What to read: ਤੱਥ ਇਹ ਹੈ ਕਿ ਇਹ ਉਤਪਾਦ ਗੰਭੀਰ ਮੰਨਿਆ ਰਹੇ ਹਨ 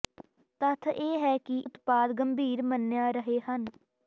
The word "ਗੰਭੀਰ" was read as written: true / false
true